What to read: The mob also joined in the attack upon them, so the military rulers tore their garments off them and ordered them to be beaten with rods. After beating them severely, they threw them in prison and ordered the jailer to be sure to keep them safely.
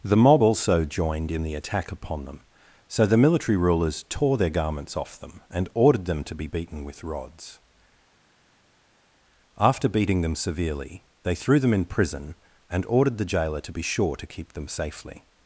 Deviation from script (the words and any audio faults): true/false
false